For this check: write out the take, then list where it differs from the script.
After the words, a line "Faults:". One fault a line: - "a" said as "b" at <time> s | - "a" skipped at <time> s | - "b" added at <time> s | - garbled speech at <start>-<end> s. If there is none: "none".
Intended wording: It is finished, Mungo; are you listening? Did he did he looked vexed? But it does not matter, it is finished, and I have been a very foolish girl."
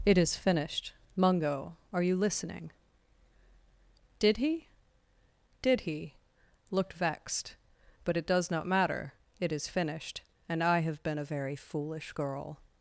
It is finished, Mungo; are you listening? Did he did he looked vexed? But it does not matter, it is finished, and I have been a very foolish girl."
Faults:
none